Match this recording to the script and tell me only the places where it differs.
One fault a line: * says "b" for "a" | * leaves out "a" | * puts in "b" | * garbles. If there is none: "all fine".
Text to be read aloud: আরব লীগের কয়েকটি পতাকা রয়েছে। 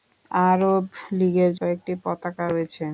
all fine